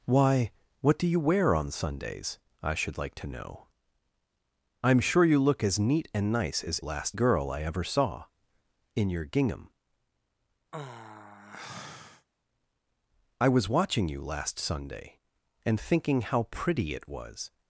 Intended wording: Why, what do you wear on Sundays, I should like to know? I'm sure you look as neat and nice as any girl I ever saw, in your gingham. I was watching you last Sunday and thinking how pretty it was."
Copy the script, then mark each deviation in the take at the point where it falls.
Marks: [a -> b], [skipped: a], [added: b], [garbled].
Why, what do you wear on Sundays, I should like to know? I'm sure you look as neat and nice as [any -> last] girl I ever saw, in your gingham. I was watching you last Sunday and thinking how pretty it was."